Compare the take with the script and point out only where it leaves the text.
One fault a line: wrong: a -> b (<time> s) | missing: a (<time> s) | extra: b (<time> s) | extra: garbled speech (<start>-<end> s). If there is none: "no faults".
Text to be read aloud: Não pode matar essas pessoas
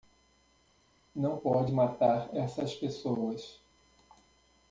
no faults